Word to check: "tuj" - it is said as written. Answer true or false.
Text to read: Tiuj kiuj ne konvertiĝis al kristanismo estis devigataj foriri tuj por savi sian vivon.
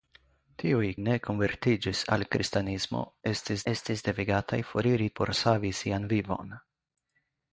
false